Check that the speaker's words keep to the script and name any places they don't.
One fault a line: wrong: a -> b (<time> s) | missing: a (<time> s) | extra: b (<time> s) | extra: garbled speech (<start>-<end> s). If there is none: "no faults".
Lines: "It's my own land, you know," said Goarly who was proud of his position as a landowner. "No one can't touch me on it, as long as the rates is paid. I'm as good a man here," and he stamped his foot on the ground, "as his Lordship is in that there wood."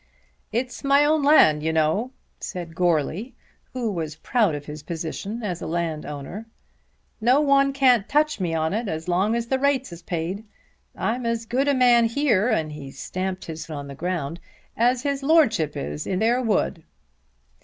missing: foot (13.7 s)
missing: that (16.2 s)